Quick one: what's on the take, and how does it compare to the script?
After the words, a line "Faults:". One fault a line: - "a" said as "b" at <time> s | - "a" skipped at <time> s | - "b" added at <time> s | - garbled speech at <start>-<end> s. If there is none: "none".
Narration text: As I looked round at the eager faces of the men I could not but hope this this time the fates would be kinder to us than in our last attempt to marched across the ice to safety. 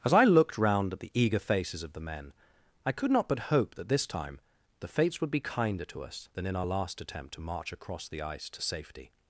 As I looked round at the eager faces of the men I could not but hope that this time the fates would be kinder to us than in our last attempt to march across the ice to safety.
Faults:
- "this" said as "that" at 3.8 s
- "marched" said as "march" at 7.4 s